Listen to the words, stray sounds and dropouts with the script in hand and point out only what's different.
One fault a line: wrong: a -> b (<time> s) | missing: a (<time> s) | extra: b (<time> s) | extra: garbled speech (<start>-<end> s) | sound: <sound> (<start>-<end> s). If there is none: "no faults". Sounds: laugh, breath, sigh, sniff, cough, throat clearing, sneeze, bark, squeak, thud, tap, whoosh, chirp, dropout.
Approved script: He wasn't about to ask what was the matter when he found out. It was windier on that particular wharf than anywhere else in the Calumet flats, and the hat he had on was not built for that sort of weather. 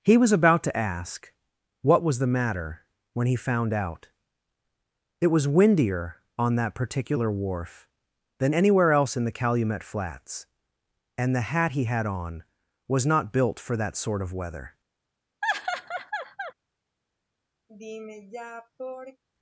wrong: wasn't -> was (0.2 s)
sound: laugh (15.4-16.5 s)
sound: sigh (17.7-19.2 s)